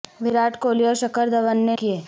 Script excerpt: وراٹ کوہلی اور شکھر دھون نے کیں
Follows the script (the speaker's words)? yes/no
yes